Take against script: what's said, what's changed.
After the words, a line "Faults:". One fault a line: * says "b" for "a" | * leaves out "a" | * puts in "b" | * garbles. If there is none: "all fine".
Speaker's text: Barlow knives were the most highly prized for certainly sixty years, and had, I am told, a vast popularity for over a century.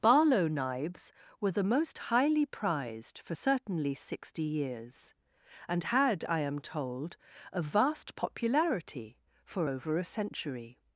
Barlow knives were the most highly prized for certainly sixty years, and had, I am told, a vast popularity for over a century.
Faults:
all fine